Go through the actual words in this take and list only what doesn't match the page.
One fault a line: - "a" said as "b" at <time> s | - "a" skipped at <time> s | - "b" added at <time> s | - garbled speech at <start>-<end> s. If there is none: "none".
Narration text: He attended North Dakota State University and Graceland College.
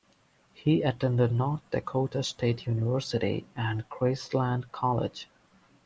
none